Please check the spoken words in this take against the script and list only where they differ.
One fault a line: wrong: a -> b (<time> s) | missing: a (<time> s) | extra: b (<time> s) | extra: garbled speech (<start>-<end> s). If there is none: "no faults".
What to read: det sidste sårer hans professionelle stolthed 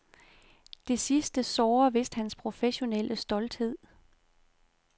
extra: vist (1.9 s)